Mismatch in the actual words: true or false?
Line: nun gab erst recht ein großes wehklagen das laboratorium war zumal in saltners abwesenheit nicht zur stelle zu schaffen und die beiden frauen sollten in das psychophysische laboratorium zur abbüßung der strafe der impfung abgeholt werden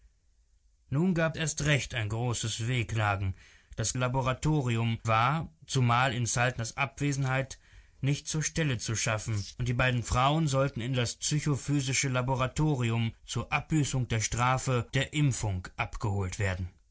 false